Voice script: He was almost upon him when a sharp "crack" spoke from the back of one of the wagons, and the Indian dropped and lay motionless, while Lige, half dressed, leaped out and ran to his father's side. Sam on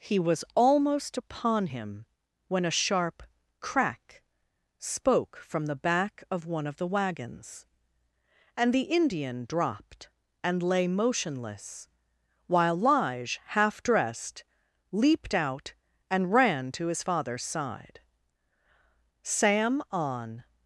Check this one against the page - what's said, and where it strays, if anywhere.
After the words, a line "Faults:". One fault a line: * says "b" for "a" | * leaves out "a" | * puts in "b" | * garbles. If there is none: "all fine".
He was almost upon him when a sharp "crack" spoke from the back of one of the wagons, and the Indian dropped and lay motionless, while Lige, half dressed, leaped out and ran to his father's side. Sam on
Faults:
all fine